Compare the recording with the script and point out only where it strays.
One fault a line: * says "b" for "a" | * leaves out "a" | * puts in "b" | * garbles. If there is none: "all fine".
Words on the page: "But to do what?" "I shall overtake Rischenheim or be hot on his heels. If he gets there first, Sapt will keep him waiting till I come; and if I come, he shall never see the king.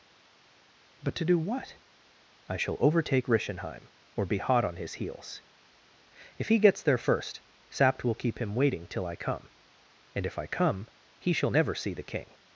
all fine